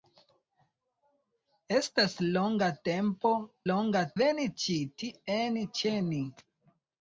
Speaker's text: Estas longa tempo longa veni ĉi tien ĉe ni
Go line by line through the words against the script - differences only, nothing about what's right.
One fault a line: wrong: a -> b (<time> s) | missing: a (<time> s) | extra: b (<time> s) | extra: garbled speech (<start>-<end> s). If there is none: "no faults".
no faults